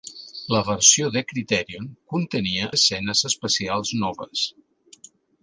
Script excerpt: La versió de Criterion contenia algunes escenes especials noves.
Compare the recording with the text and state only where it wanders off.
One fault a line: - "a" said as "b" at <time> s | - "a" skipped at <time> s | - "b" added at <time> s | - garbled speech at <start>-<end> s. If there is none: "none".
- "algunes" skipped at 2.7 s